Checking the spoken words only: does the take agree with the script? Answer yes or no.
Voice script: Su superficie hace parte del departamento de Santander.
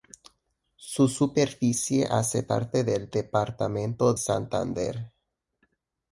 no